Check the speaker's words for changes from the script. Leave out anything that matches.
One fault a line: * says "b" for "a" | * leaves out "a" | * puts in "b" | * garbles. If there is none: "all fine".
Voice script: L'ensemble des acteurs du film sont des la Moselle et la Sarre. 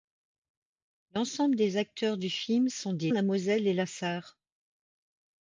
all fine